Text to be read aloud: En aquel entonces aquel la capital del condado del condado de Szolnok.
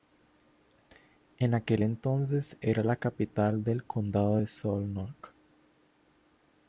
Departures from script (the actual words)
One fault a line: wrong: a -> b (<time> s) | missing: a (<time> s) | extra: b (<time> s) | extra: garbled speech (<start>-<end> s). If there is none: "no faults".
wrong: aquel -> era (2.6 s)
missing: del condado (4.4 s)